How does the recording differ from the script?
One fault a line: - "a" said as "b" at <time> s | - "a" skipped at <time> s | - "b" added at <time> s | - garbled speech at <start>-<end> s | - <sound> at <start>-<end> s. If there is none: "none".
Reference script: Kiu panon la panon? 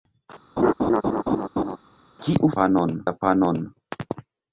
- laugh at 0.6-1.8 s